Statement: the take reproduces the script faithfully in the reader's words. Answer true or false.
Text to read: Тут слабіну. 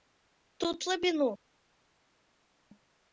true